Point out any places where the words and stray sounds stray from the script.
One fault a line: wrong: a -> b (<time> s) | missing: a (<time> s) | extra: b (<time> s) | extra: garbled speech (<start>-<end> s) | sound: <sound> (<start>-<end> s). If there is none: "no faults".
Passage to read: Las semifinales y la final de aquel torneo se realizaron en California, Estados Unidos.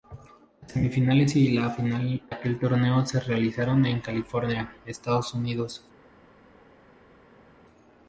missing: de (2.2 s)